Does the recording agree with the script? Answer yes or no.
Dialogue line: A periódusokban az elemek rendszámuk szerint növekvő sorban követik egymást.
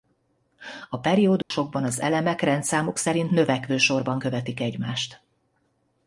yes